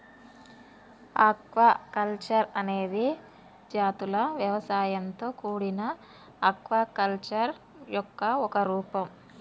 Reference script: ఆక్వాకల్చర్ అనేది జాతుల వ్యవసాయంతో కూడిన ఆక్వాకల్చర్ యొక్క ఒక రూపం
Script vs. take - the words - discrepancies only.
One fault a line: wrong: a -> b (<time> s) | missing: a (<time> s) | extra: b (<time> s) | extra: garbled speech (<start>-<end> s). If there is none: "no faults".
no faults